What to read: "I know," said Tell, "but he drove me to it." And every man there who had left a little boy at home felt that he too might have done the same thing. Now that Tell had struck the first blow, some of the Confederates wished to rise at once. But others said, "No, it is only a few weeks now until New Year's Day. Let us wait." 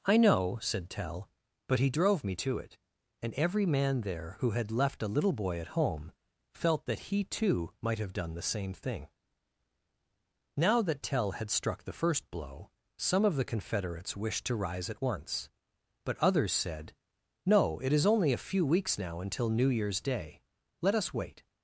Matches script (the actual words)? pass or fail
pass